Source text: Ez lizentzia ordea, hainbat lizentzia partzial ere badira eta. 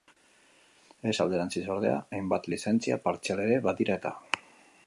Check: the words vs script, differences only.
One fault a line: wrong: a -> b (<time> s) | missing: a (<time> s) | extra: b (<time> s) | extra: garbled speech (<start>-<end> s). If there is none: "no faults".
wrong: lizentzia -> alderantziz (1.2 s)